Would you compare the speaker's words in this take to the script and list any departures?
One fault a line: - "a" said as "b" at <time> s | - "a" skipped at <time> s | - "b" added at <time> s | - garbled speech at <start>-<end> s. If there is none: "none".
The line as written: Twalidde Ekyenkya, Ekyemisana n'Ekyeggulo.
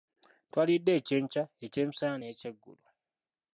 none